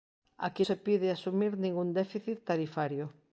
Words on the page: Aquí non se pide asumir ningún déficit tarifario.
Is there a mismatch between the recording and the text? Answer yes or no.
yes